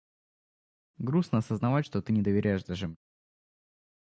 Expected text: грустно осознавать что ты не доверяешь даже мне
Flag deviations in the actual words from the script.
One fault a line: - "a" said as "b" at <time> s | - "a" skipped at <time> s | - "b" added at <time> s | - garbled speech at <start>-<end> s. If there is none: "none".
none